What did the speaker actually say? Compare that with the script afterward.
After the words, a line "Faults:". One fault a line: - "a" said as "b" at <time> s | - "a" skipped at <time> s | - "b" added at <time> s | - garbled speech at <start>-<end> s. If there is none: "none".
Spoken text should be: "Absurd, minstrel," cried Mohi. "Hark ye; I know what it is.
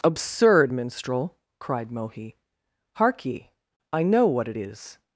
"Absurd, minstrel," cried Mohi. "Hark ye; I know what it is.
Faults:
none